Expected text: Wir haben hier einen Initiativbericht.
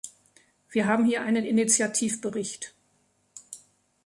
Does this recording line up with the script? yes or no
yes